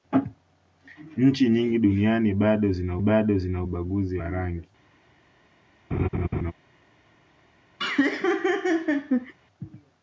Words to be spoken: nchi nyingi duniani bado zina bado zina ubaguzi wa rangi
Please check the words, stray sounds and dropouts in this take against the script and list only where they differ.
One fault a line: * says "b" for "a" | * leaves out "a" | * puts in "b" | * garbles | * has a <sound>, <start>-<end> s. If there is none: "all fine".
* has a laugh, 5.9-6.5 s
* has a laugh, 7.8-9.3 s